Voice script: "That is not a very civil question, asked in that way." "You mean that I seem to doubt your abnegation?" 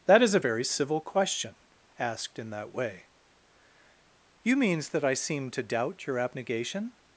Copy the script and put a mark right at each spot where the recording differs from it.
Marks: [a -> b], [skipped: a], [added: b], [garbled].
"That is [skipped: not] a very civil question, asked in that way." "You [mean -> means] that I seem to doubt your abnegation?"